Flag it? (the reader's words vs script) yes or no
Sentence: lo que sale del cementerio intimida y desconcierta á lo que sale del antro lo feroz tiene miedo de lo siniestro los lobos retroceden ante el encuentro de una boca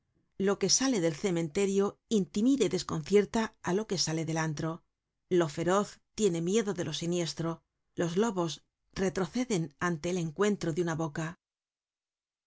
no